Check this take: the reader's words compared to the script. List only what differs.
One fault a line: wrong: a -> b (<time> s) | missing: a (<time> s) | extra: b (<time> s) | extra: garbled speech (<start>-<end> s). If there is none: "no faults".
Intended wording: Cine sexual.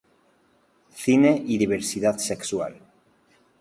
extra: y diversidad (1.4 s)